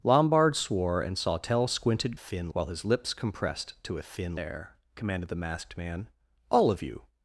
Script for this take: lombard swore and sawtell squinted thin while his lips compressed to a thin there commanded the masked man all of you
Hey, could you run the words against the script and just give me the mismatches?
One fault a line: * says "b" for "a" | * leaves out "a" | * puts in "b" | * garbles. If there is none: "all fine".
all fine